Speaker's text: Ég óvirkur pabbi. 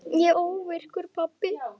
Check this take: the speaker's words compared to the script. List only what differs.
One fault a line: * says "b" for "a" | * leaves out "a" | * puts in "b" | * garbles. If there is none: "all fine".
all fine